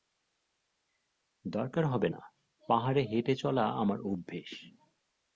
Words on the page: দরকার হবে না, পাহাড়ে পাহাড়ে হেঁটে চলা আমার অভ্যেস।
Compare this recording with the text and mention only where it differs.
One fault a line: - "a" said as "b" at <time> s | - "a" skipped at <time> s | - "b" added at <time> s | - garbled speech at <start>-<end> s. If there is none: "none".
- "পাহাড়ে" skipped at 3.0 s